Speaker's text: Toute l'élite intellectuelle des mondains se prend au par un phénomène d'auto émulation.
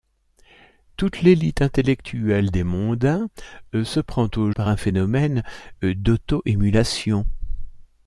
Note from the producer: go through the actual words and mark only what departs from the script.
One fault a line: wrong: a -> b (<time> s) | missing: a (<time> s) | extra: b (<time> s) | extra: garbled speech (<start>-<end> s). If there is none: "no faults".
no faults